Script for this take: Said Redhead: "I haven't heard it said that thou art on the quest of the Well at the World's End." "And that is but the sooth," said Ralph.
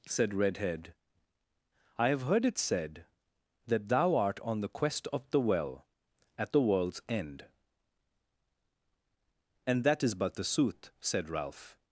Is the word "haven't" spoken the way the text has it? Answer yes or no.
no